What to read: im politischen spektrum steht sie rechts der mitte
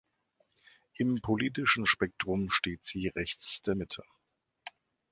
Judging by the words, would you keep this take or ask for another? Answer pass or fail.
pass